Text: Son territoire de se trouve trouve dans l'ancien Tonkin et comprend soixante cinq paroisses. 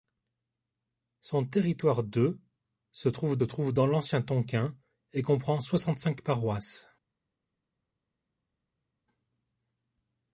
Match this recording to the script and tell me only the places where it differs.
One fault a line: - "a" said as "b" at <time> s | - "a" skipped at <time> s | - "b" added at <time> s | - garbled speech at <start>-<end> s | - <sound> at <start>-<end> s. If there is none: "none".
none